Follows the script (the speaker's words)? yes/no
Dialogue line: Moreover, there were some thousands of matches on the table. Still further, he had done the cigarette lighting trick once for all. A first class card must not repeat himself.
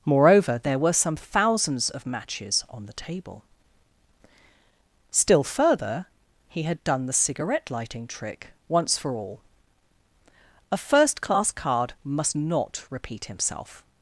yes